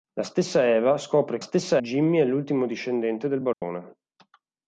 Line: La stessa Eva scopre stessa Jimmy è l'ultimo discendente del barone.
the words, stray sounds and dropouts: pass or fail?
fail